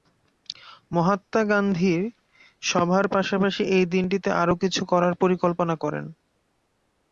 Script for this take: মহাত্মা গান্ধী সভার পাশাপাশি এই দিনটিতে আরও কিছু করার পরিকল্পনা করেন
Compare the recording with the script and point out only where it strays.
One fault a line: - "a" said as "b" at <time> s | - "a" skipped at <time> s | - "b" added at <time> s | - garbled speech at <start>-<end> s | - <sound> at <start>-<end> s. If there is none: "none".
none